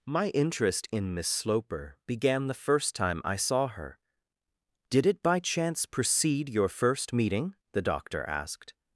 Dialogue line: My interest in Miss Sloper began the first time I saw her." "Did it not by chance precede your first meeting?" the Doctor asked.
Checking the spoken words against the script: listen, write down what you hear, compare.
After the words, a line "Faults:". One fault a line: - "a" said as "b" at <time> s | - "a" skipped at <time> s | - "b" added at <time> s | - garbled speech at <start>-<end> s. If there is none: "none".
My interest in Miss Sloper began the first time I saw her." "Did it by chance precede your first meeting?" the Doctor asked.
Faults:
- "not" skipped at 5.2 s